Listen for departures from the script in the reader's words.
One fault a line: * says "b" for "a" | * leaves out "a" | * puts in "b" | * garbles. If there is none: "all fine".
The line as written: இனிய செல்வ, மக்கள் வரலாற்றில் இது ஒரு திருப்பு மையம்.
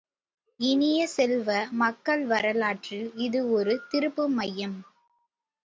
all fine